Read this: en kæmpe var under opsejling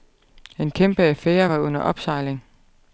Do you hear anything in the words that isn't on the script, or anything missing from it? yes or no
yes